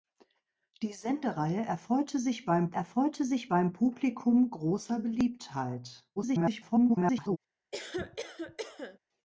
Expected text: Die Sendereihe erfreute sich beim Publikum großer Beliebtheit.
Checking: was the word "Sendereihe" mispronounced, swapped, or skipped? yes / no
no